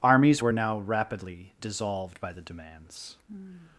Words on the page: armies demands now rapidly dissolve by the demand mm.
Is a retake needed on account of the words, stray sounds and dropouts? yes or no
yes